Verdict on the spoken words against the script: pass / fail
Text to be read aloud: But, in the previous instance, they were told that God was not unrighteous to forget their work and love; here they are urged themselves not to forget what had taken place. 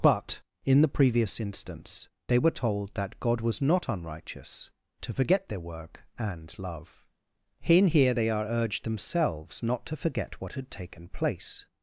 fail